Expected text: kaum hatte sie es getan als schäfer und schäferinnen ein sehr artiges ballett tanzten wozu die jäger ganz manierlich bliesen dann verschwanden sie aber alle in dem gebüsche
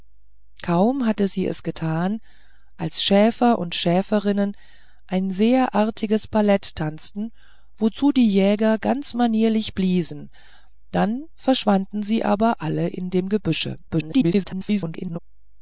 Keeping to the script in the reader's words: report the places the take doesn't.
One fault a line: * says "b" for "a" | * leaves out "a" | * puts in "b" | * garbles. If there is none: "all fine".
* garbles